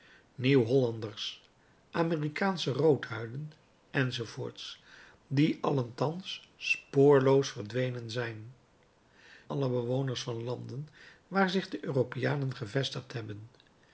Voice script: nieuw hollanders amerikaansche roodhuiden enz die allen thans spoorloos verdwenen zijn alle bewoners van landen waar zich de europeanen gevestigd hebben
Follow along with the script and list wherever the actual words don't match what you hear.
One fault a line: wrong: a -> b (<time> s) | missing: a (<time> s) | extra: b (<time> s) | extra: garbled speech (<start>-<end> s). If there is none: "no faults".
no faults